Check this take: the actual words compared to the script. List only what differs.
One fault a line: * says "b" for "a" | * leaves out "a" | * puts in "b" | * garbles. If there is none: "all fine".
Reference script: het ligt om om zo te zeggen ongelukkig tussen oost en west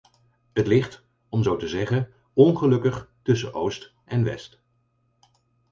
* leaves out "om"